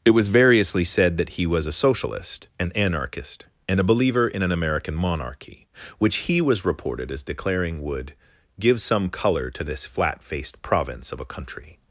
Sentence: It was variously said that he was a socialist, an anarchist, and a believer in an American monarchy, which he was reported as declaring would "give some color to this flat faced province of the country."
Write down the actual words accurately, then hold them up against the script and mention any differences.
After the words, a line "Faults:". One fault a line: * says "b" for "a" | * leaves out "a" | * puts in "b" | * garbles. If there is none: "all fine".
It was variously said that he was a socialist, an anarchist, and a believer in an American monarchy, which he was reported as declaring would "give some color to this flat faced province of a country."
Faults:
* says "a" for "the"